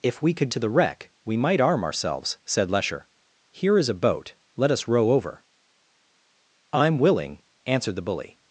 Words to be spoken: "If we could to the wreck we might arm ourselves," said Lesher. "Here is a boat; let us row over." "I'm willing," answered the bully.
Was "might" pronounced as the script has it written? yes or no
yes